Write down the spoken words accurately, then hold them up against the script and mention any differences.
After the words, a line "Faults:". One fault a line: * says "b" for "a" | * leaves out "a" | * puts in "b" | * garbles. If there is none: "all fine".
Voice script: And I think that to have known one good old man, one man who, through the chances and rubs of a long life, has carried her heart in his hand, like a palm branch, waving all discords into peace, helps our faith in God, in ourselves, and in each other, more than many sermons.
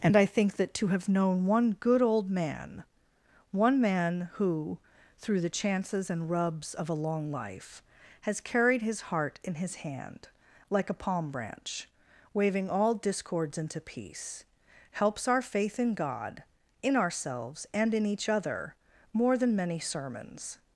And I think that to have known one good old man, one man who, through the chances and rubs of a long life, has carried his heart in his hand, like a palm branch, waving all discords into peace, helps our faith in God, in ourselves, and in each other, more than many sermons.
Faults:
* says "his" for "her"